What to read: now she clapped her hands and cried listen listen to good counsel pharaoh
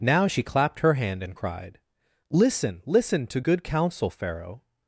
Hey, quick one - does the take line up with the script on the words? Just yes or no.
no